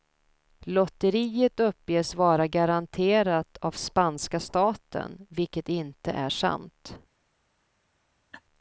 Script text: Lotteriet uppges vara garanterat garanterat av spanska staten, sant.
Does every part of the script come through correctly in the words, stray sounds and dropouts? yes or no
no